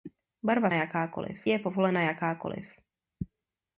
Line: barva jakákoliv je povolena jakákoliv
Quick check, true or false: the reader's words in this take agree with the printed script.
true